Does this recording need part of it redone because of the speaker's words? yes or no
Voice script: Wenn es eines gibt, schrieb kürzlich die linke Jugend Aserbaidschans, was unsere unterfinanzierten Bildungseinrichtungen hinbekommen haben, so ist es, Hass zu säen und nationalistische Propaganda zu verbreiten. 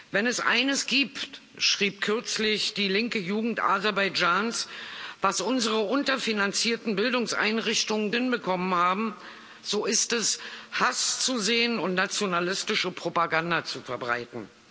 no